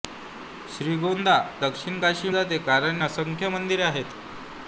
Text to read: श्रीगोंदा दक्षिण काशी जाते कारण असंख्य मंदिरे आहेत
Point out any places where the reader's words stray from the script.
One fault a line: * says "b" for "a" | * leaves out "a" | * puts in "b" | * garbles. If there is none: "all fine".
all fine